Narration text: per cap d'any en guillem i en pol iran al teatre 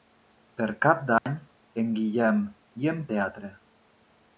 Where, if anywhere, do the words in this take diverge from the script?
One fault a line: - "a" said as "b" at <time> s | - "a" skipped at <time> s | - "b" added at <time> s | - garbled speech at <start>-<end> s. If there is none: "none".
- "pol iran al" skipped at 3.0 s